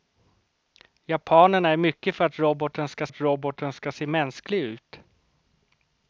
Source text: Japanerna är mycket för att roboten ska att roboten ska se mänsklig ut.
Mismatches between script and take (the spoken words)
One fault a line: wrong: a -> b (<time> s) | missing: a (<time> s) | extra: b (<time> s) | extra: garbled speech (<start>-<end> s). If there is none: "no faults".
no faults